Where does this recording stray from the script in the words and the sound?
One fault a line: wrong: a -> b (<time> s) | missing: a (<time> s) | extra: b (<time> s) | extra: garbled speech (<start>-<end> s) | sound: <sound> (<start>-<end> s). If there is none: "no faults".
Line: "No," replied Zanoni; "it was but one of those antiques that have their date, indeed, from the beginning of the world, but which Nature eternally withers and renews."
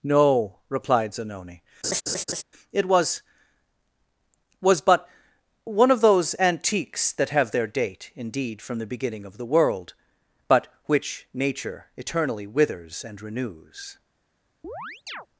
sound: laugh (1.8-2.4 s)
extra: was (4.6 s)
sound: chirp (14.6-15.3 s)